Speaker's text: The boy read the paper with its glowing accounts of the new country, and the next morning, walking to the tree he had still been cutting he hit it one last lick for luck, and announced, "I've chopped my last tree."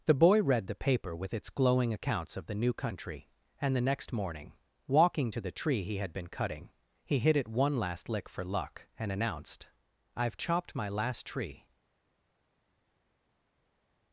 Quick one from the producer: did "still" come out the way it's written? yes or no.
no